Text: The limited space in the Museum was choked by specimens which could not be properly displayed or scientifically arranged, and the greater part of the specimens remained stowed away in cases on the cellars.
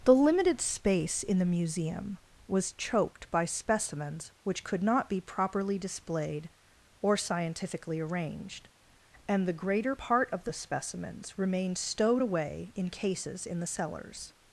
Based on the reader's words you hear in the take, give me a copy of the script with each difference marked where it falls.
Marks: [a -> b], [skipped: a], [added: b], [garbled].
The limited space in the Museum was choked by specimens which could not be properly displayed or scientifically arranged, and the greater part of the specimens remained stowed away in cases [on -> in] the cellars.